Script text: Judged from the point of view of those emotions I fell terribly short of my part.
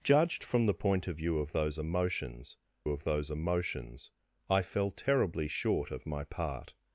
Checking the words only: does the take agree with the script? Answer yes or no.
no